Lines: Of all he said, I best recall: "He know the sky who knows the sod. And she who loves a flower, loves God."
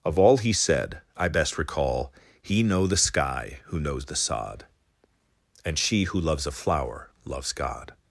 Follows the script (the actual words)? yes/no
yes